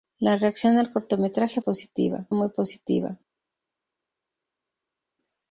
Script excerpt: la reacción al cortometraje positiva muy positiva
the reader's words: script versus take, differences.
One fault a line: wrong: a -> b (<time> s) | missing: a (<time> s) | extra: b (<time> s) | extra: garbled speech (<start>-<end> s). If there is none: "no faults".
no faults